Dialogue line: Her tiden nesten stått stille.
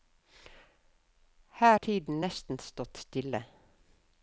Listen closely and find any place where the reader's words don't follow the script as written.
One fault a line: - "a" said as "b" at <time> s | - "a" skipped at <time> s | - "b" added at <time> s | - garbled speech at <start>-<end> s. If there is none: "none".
none